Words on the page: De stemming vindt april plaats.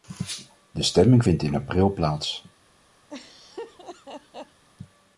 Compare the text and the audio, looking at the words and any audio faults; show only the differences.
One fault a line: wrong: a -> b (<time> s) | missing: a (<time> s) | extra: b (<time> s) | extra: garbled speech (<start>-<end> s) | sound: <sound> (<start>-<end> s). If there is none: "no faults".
extra: in (1.4 s)
sound: laugh (3.1-4.6 s)